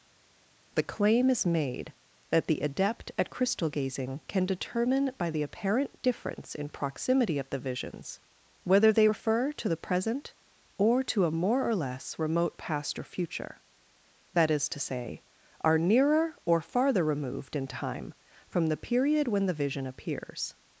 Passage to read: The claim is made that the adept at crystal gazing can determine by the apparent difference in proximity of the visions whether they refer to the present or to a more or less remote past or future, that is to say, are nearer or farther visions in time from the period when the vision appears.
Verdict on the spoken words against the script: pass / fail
fail